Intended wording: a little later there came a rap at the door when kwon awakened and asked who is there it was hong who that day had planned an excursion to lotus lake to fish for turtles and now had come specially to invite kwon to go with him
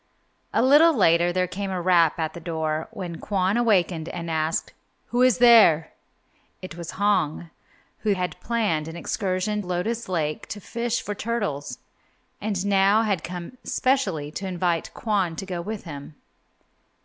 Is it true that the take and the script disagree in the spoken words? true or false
true